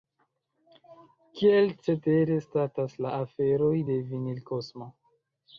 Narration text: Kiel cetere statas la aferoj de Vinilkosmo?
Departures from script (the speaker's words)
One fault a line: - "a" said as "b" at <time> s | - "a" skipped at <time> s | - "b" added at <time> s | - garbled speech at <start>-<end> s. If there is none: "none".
none